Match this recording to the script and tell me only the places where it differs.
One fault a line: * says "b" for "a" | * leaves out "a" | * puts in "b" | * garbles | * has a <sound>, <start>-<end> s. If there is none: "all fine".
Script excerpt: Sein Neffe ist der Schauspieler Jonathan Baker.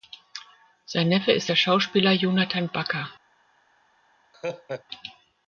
* has a laugh, 4.3-4.8 s